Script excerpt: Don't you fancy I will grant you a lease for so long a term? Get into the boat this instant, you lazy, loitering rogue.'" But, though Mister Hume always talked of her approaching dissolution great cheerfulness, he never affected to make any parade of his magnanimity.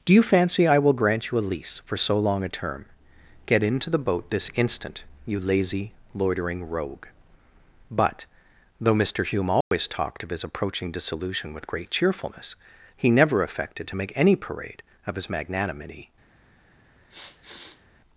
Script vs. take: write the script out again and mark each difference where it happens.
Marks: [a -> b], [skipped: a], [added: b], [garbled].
[Don't -> Do] you fancy I will grant you a lease for so long a term? Get into the boat this instant, you lazy, loitering rogue.'" But, though Mister Hume always talked of [her -> his] approaching dissolution [added: with] great cheerfulness, he never affected to make any parade of his magnanimity.